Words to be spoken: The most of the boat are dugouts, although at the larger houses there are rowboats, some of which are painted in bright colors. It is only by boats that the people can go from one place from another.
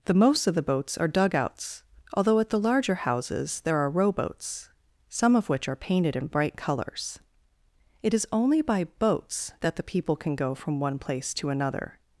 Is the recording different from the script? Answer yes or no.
yes